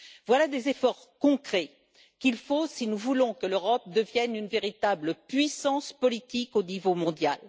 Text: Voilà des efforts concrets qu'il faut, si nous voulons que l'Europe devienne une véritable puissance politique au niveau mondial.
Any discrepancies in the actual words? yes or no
no